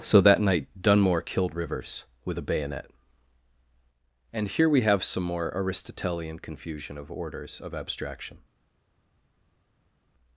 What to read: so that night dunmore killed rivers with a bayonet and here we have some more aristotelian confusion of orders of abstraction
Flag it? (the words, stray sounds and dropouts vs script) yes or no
no